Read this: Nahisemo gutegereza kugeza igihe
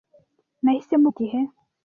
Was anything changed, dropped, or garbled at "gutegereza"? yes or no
yes